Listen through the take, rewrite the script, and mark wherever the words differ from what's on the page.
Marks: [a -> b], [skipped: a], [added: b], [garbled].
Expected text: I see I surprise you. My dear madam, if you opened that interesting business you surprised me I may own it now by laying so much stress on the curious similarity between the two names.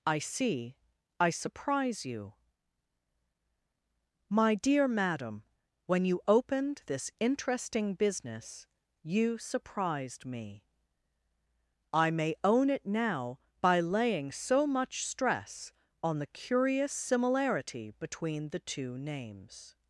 I see I surprise you. My dear madam, [if -> when] you opened [that -> this] interesting business you surprised me I may own it now by laying so much stress on the curious similarity between the two names.